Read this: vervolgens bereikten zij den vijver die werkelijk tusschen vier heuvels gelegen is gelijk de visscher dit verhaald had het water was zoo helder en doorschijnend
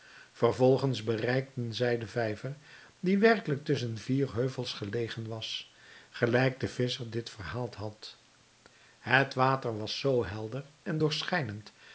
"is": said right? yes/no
no